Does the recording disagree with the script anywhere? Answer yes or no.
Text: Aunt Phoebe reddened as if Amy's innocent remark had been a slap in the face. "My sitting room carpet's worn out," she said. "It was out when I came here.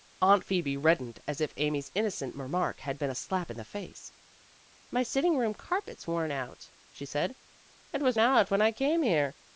no